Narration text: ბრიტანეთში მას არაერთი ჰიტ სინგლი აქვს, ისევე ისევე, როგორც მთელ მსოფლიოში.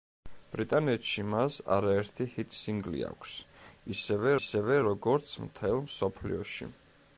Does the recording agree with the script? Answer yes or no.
yes